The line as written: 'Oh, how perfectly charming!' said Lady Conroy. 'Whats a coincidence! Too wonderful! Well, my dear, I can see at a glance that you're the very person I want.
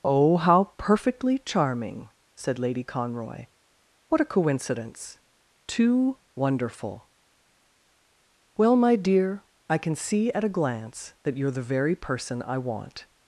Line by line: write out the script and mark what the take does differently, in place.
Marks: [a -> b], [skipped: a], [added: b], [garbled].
'Oh, how perfectly charming!' said Lady Conroy. ['Whats -> What] a coincidence! Too wonderful! Well, my dear, I can see at a glance that you're the very person I want.